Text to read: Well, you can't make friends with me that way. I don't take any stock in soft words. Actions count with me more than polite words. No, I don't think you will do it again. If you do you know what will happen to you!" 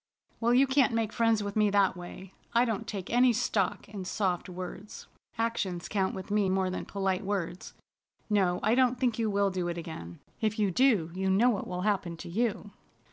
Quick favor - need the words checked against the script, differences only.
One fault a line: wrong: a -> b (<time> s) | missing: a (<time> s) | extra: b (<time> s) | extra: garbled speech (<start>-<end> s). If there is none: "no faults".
no faults